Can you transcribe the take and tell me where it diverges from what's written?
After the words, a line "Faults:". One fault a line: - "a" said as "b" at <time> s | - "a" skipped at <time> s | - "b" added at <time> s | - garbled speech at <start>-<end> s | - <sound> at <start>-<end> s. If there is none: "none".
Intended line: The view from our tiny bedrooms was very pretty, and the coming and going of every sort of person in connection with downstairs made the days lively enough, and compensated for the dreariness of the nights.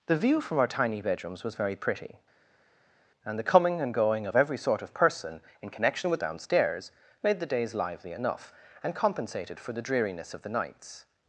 The view from our tiny bedrooms was very pretty, and the coming and going of every sort of person in connection with downstairs made the days lively enough, and compensated for the dreariness of the nights.
Faults:
none